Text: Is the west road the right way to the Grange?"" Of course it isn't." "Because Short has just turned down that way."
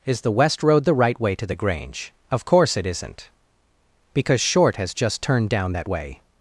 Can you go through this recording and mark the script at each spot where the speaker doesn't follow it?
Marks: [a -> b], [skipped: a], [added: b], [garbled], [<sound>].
Is the west road the right way to the Grange?"" Of course it isn't." "Because Short has just turned down that way."